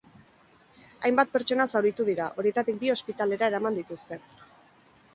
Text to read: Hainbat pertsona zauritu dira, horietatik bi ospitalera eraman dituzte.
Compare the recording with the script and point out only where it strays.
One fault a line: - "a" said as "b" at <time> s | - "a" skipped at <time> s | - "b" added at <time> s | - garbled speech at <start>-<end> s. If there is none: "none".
none